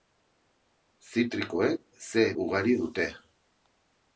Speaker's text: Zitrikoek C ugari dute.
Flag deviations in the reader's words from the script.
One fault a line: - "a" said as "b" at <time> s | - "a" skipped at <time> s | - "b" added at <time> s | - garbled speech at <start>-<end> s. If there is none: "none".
none